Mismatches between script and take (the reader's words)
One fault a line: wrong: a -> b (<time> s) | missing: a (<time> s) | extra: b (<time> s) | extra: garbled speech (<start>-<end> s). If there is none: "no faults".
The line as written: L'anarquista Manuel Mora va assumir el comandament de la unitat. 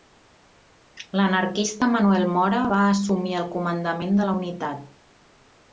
no faults